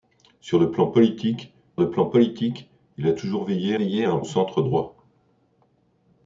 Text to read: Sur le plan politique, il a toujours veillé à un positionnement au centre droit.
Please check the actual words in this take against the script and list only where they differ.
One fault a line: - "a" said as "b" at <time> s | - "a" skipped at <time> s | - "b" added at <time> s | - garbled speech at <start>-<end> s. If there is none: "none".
- "le plan politique" added at 1.8 s
- "veillé" added at 3.8 s
- "positionnement" skipped at 4.2 s